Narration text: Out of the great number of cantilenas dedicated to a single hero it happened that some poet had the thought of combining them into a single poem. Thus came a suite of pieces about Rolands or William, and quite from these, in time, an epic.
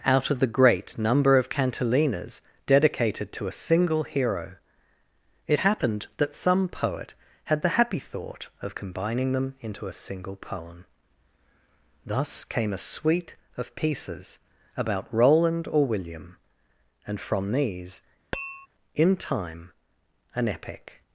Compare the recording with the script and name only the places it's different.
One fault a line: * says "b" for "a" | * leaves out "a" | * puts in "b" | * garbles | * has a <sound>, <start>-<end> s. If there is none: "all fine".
* puts in "happy"
* says "Roland" for "Rolands"
* leaves out "quite"
* has a tap, 18.3-18.7 s